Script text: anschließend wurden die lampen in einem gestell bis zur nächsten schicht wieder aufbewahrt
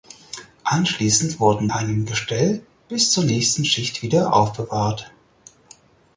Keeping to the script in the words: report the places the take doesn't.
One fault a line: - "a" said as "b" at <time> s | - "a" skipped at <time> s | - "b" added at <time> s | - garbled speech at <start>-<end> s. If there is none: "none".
- "die lampen in" skipped at 1.7 s